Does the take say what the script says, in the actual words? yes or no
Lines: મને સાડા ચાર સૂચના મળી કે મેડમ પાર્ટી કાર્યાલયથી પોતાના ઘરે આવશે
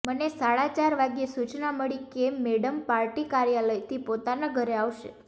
no